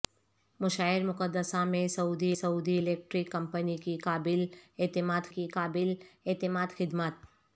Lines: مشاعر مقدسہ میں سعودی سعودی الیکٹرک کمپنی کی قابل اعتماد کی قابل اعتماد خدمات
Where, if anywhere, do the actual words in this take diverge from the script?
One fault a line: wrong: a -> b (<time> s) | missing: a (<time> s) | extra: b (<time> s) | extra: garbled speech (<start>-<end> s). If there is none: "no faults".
no faults